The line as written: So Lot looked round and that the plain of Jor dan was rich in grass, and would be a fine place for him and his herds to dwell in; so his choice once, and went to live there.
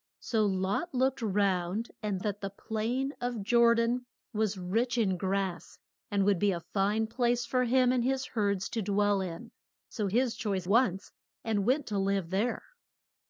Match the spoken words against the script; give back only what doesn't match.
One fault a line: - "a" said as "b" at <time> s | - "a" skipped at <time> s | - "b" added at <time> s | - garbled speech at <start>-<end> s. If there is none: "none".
none